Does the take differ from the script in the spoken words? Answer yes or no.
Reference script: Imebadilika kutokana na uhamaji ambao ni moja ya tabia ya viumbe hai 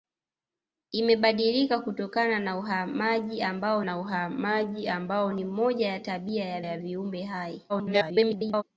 yes